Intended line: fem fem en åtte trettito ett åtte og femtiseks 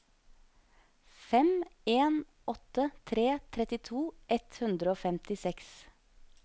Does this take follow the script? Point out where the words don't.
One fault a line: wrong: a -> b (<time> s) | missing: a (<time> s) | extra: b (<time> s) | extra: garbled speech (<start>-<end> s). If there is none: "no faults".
missing: fem (1.6 s)
extra: tre (3.0 s)
wrong: åtte -> hundre (4.6 s)